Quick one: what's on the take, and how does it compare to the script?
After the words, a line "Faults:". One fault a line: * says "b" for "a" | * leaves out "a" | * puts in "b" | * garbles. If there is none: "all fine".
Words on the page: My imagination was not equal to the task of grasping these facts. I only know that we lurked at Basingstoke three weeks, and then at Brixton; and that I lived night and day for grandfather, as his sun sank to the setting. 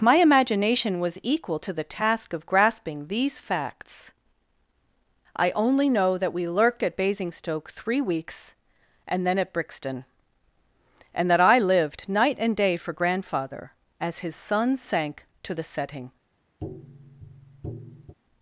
My imagination was equal to the task of grasping these facts. I only know that we lurked at Basingstoke three weeks, and then at Brixton; and that I lived night and day for grandfather, as his sun sank to the setting.
Faults:
* leaves out "not"